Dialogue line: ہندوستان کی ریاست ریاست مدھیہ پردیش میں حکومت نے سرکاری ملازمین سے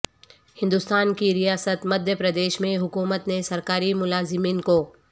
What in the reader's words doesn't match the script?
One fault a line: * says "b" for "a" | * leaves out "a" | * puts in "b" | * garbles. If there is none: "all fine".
* leaves out "ریاست"
* says "کو" for "سے"